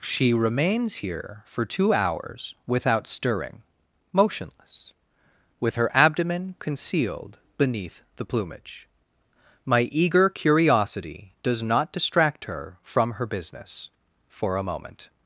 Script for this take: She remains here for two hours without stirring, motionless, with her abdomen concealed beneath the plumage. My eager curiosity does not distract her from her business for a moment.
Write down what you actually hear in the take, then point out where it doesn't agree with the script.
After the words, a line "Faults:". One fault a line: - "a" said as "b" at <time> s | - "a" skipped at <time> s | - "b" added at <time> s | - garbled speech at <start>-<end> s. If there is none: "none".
She remains here for two hours without stirring, motionless, with her abdomen concealed beneath the plumage. My eager curiosity does not distract her from her business for a moment.
Faults:
none